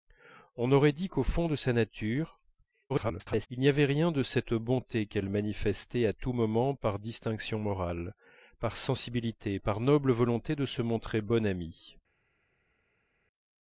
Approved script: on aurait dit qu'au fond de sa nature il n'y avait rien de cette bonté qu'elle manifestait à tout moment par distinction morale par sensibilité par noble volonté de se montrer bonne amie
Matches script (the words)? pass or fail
fail